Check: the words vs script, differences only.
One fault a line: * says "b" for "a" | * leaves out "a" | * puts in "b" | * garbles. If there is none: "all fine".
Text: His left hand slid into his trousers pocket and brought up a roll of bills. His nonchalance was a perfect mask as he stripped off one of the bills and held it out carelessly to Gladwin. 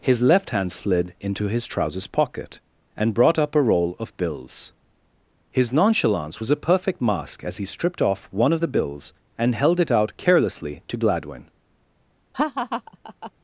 all fine